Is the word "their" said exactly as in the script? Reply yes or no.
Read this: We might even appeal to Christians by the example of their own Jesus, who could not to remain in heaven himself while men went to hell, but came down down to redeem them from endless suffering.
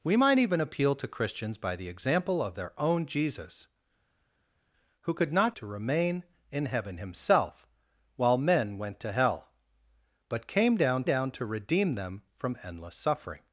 yes